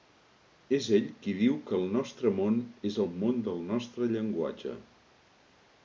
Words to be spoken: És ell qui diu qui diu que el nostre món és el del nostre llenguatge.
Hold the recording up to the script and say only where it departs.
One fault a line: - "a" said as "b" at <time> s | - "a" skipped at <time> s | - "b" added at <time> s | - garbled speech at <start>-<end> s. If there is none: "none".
- "qui diu" skipped at 1.6 s
- "món" added at 3.2 s